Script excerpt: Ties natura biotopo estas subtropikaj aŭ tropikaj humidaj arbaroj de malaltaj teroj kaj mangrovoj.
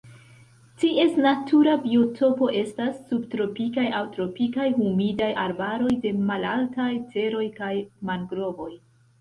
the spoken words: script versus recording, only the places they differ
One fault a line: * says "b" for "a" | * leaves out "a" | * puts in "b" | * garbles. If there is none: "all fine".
all fine